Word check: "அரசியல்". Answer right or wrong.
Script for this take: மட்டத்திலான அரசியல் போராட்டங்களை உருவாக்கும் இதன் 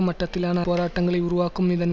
wrong